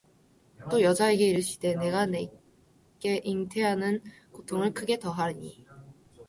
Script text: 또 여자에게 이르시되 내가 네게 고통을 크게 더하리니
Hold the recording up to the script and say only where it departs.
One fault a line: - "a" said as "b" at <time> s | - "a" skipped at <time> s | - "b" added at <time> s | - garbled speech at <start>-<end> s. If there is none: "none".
- "잉태하는" added at 3.2 s